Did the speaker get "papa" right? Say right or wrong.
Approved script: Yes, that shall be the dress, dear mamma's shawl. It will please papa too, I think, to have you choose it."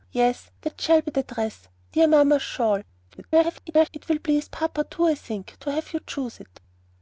right